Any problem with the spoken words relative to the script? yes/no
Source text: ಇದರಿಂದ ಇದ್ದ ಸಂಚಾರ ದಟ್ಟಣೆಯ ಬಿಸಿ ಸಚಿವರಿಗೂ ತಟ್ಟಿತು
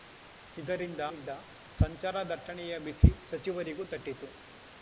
no